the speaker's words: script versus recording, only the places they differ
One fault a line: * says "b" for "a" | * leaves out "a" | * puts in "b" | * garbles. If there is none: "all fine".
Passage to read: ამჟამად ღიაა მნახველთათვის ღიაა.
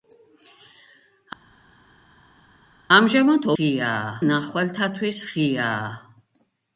all fine